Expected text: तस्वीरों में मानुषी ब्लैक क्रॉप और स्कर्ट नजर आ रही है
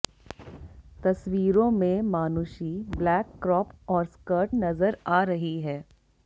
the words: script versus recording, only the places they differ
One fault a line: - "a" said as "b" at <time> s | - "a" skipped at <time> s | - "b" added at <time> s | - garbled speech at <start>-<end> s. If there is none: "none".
none